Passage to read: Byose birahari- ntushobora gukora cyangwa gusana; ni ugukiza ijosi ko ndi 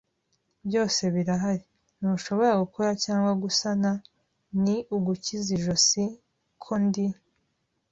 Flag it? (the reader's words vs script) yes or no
no